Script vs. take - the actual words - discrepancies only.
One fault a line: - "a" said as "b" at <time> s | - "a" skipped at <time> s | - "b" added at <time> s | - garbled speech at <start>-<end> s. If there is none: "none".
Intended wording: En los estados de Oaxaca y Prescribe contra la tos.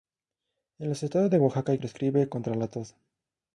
none